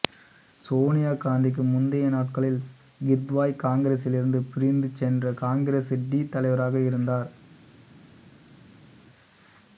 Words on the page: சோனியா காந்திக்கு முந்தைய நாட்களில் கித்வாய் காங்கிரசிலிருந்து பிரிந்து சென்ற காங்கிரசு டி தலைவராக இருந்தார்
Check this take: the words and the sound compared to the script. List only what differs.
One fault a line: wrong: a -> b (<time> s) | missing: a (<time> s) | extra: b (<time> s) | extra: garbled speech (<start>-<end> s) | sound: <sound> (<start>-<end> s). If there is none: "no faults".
no faults